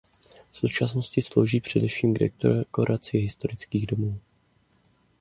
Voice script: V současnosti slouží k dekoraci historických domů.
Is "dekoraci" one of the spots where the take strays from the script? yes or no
no